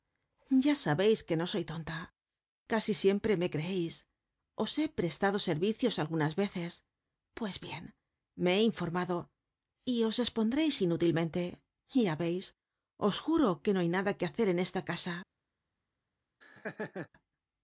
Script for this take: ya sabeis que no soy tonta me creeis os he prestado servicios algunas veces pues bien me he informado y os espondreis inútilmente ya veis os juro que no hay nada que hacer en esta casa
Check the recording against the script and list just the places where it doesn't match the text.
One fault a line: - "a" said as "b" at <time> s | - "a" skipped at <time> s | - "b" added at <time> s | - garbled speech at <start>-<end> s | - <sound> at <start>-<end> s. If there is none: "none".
- "casi siempre" added at 2.7 s
- laugh at 16.4-17.1 s